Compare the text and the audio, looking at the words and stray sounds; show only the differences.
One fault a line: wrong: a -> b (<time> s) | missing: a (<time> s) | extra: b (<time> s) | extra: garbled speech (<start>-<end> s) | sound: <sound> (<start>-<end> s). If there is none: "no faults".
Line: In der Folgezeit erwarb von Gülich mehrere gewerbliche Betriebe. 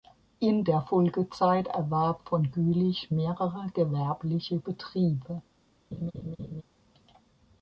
sound: laugh (5.9-6.6 s)